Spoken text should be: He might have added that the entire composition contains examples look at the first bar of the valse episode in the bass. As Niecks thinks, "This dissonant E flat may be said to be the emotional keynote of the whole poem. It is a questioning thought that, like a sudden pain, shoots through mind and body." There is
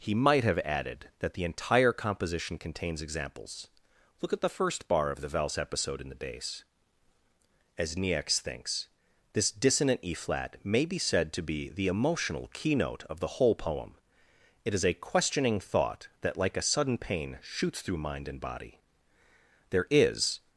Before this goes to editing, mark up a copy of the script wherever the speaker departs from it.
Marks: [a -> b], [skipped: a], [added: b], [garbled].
He might have added that the entire composition contains examples look at the first bar of the valse episode in the bass. As Niecks thinks, "This dissonant E flat may be said to be the emotional keynote of the whole poem. It is a questioning thought that, like a sudden pain, shoots through mind and body." There is